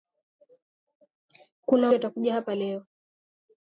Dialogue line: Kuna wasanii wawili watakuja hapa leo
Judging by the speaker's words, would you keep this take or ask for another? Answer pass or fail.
fail